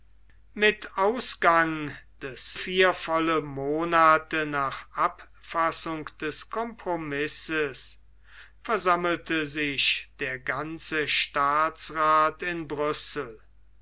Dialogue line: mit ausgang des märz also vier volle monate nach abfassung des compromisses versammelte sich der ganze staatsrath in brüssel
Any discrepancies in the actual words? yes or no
yes